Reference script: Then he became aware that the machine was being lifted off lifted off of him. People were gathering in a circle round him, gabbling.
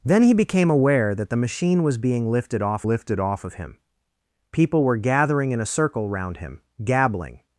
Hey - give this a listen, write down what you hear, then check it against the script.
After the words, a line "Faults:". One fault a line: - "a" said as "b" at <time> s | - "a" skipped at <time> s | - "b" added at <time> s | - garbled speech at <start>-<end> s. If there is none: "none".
Then he became aware that the machine was being lifted off lifted off of him. People were gathering in a circle round him, gabbling.
Faults:
none